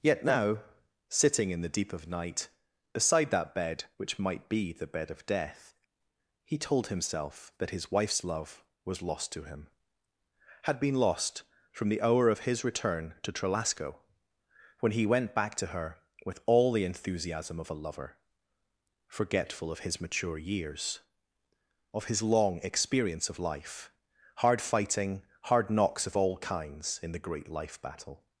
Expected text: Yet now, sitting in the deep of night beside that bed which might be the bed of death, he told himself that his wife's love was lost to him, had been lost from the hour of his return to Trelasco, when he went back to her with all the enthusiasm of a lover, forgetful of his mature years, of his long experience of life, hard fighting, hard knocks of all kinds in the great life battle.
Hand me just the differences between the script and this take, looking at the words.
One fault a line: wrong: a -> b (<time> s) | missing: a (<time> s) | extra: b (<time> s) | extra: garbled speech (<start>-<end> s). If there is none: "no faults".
no faults